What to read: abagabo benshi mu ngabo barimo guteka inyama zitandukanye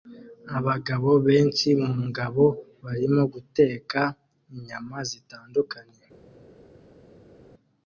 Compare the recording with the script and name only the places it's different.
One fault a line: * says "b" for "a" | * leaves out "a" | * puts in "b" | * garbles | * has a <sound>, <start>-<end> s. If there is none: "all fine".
all fine